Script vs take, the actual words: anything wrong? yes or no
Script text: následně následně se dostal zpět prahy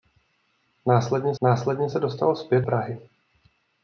no